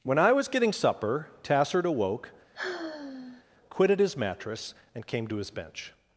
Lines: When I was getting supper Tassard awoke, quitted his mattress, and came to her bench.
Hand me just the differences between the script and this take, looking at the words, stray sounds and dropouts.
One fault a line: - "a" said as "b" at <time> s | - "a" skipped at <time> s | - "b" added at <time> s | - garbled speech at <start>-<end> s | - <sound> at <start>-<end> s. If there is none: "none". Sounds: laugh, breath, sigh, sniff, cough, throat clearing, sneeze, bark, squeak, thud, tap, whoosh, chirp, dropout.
- sigh at 2.5-3.4 s
- "her" said as "his" at 5.3 s